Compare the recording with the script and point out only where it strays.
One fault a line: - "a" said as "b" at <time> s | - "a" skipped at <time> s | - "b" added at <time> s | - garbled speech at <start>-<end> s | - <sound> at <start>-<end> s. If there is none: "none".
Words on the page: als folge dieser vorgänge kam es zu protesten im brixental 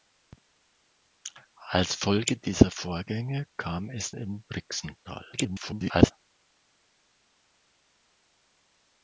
- "zu protesten" skipped at 4.2 s
- garbled speech at 5.3-6.1 s